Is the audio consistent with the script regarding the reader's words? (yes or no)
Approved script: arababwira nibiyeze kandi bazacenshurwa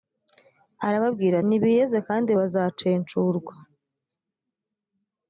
yes